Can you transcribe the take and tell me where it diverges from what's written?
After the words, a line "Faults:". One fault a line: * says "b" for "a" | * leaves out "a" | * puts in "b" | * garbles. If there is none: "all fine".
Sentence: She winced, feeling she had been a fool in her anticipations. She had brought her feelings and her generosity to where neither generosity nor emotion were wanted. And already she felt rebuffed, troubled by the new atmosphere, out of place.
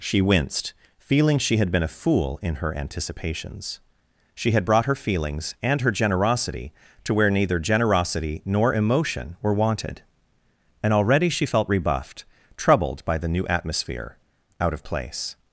She winced, feeling she had been a fool in her anticipations. She had brought her feelings and her generosity to where neither generosity nor emotion were wanted. And already she felt rebuffed, troubled by the new atmosphere, out of place.
Faults:
all fine